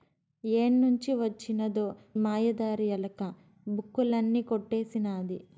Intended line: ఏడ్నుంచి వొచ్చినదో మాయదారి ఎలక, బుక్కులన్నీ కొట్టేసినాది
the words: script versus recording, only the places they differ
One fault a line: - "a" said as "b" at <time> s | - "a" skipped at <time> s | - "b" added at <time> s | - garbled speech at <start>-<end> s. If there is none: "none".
none